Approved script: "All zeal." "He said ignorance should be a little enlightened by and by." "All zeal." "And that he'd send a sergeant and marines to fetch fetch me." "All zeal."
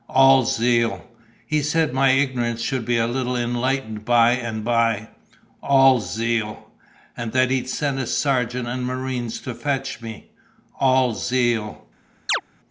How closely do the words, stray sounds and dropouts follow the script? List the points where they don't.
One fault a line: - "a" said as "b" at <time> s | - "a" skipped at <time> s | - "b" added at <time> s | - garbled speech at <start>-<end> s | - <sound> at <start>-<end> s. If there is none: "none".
- "my" added at 1.9 s
- "fetch" skipped at 10.0 s
- chirp at 12.3-12.4 s